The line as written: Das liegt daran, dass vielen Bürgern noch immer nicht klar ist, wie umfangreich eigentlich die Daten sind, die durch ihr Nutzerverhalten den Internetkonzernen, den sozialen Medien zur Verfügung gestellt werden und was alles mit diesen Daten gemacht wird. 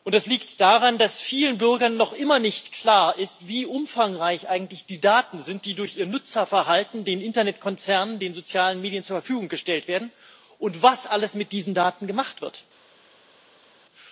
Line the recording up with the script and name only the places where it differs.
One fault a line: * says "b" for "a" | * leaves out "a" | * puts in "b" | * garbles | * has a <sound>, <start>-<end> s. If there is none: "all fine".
all fine